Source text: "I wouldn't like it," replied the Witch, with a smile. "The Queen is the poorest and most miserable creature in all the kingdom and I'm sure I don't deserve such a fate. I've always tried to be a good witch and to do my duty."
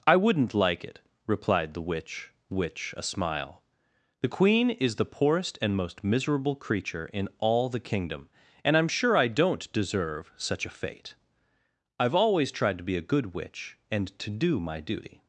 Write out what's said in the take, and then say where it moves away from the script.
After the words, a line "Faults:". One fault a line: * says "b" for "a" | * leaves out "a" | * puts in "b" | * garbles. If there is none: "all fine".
"I wouldn't like it," replied the Witch, which a smile. "The Queen is the poorest and most miserable creature in all the kingdom and I'm sure I don't deserve such a fate. I've always tried to be a good witch and to do my duty."
Faults:
* says "which" for "with"